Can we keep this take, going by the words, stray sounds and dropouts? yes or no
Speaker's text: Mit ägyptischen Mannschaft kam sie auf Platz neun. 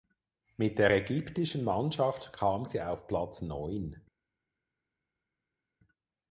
no